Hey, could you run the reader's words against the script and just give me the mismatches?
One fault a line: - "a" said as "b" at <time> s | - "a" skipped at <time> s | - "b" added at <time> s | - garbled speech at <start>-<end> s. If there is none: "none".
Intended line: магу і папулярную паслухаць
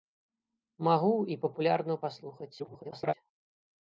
- garbled speech at 2.6-3.1 s